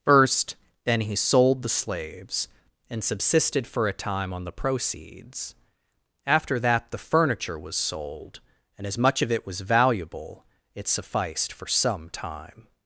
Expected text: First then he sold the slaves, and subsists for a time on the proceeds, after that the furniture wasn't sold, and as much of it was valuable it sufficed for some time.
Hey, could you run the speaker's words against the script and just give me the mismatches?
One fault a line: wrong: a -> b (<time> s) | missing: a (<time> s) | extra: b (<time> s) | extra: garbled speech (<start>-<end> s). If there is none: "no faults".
wrong: subsists -> subsisted (3.0 s)
wrong: wasn't -> was (7.6 s)